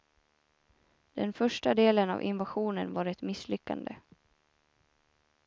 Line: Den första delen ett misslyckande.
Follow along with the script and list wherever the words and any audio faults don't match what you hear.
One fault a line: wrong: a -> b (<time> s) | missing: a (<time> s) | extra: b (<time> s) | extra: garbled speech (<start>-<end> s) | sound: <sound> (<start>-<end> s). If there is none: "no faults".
extra: av invasionen var (2.1 s)